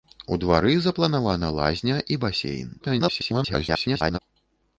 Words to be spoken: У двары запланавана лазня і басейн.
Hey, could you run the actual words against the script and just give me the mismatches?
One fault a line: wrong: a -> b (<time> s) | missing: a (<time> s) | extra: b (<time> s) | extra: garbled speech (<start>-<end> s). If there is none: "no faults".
extra: garbled speech (2.8-4.2 s)